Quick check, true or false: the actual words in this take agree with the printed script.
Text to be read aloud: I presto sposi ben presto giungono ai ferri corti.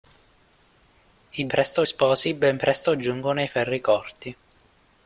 true